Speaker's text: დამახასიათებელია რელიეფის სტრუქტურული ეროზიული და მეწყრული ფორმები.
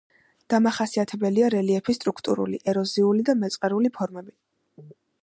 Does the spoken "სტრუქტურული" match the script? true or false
true